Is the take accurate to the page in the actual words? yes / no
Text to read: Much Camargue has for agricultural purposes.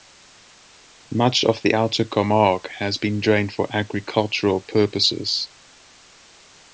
no